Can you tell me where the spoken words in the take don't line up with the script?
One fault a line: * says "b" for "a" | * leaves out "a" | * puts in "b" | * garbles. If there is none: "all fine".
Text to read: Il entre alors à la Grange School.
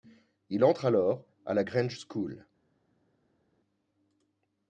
all fine